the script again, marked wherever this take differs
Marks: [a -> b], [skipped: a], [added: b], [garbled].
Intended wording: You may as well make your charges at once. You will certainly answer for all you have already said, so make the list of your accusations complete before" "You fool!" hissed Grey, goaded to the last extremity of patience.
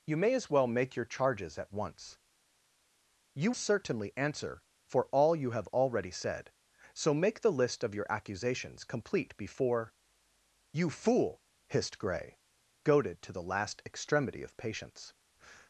You may as well make your charges at once. You [skipped: will] certainly answer for all you have already said, so make the list of your accusations complete before" "You fool!" hissed Grey, goaded to the last extremity of patience.